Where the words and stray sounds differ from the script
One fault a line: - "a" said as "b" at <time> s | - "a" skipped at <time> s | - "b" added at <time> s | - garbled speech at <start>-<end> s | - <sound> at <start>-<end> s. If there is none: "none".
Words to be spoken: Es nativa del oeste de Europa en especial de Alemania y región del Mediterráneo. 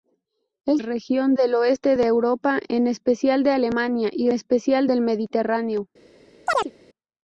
- "nativa" said as "región" at 0.8 s
- "región" said as "especial" at 4.3 s
- chirp at 6.5-6.7 s